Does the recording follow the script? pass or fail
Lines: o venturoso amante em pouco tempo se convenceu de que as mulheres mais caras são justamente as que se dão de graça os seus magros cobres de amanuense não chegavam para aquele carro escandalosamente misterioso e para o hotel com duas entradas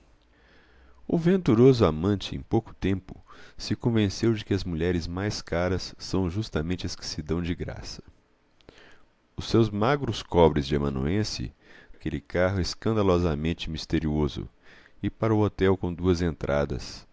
fail